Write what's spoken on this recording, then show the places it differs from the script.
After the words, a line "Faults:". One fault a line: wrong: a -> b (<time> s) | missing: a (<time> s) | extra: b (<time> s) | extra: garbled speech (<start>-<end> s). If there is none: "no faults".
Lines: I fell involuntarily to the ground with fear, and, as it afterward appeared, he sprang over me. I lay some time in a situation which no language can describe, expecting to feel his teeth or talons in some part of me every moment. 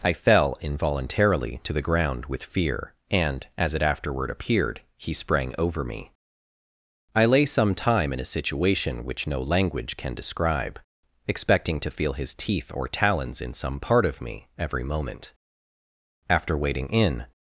I fell involuntarily to the ground with fear, and, as it afterward appeared, he sprang over me. I lay some time in a situation which no language can describe, expecting to feel his teeth or talons in some part of me every moment. After waiting in
Faults:
extra: After waiting in (16.3 s)